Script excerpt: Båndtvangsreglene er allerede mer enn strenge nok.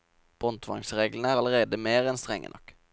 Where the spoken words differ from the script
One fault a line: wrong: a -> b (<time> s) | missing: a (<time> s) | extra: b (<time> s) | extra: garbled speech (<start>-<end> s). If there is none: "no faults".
no faults